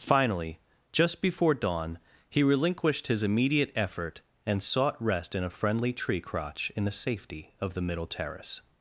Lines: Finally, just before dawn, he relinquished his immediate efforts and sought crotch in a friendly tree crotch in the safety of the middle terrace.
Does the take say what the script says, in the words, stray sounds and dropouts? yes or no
no